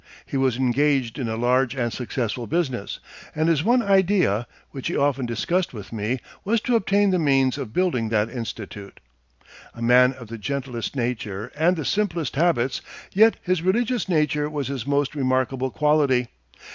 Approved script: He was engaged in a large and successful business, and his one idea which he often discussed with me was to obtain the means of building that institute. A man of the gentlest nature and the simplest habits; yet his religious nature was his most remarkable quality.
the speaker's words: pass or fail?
pass